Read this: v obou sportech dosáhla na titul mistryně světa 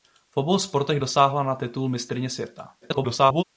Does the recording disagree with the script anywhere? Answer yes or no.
yes